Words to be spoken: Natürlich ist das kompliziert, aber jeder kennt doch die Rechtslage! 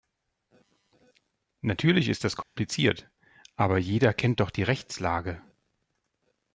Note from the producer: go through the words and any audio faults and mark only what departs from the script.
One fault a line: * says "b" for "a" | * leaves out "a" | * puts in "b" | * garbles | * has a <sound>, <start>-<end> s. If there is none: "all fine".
* has a dropout, 2.4-2.6 s